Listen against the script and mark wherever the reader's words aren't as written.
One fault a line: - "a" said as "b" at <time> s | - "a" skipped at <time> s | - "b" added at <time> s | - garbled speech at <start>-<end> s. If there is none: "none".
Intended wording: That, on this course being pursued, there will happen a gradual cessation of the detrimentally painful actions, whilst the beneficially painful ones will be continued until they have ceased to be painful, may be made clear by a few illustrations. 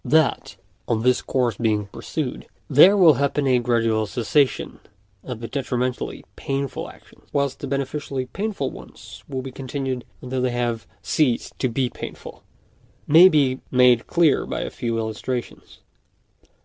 none